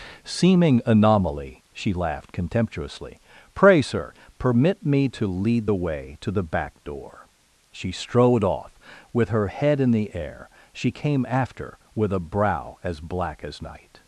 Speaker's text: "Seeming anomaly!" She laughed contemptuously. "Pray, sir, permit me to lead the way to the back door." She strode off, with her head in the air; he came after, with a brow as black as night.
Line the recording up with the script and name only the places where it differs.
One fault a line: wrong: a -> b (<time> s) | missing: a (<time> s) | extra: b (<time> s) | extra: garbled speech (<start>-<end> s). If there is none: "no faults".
wrong: he -> she (10.7 s)